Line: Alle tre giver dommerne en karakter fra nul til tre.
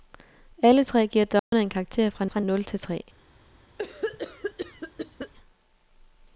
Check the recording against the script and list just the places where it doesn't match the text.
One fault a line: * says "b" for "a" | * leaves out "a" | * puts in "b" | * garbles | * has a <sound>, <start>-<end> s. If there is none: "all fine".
* has a dropout, 1.4-1.5 s
* puts in "fra"
* has a cough, 3.8-5.3 s